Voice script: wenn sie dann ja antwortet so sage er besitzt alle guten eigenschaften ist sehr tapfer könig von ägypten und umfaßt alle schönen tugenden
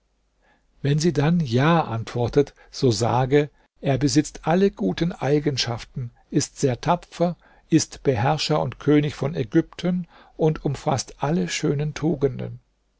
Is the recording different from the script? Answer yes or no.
yes